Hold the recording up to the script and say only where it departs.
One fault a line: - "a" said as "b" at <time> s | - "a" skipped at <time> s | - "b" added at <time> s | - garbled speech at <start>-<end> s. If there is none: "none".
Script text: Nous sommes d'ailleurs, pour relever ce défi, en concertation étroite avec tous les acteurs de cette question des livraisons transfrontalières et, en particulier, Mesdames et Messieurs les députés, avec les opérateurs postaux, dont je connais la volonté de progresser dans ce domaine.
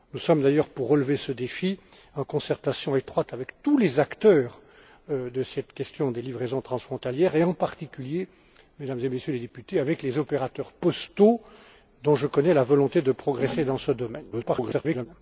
- garbled speech at 14.3-15.1 s